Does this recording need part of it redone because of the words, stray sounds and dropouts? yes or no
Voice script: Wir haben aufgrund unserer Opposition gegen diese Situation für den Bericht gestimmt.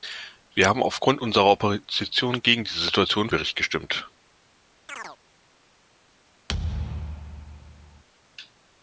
yes